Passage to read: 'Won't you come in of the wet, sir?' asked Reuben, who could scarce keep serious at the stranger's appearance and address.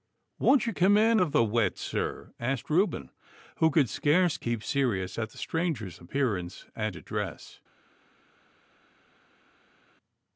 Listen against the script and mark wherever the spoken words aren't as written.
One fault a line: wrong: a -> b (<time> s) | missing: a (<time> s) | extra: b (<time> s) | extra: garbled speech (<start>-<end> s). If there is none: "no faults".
no faults